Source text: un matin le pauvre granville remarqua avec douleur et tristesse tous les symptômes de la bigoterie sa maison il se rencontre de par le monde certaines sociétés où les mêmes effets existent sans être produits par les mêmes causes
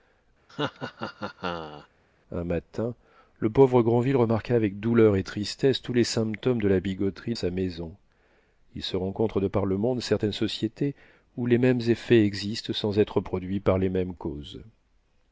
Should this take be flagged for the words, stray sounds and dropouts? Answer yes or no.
yes